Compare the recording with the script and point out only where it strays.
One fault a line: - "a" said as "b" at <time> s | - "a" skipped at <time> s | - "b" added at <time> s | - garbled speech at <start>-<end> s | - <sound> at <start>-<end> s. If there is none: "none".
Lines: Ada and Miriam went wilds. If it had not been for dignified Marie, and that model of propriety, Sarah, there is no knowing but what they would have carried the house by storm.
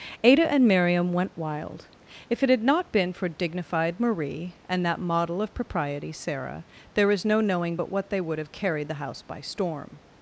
- "wilds" said as "wild" at 1.4 s